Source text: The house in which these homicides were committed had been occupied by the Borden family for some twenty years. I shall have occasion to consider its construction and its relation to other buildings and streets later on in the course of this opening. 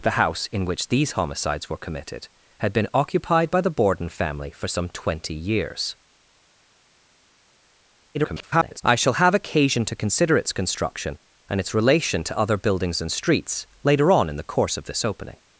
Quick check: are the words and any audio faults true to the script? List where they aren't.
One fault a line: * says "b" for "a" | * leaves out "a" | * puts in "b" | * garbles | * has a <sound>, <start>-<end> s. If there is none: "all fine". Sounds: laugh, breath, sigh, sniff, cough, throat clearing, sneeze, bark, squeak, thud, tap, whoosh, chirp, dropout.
* garbles